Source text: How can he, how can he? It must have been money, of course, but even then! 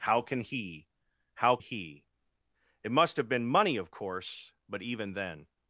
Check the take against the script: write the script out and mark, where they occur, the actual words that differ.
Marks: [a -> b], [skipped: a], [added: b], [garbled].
How can he, how [skipped: can] he? It must have been money, of course, but even then!